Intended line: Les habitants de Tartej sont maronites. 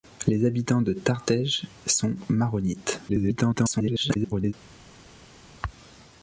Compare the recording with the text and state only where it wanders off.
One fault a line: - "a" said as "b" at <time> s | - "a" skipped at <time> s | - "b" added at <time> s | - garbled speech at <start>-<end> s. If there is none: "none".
- garbled speech at 3.1-4.5 s